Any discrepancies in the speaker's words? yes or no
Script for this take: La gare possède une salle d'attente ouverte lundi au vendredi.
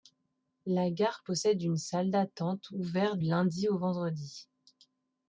no